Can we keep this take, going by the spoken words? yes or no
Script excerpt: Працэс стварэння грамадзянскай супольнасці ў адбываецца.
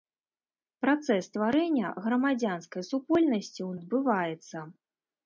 yes